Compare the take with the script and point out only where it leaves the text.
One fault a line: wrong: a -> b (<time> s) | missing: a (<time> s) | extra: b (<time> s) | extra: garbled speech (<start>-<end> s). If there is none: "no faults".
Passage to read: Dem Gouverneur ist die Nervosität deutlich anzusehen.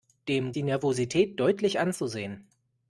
missing: Gouverneur ist (0.5 s)